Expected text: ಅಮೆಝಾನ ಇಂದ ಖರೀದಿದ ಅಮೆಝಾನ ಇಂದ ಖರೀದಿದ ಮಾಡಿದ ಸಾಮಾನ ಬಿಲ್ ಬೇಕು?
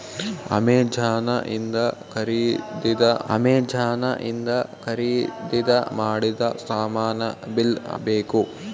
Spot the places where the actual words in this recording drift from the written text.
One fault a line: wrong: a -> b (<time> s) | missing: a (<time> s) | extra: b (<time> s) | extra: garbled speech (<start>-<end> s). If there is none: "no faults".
no faults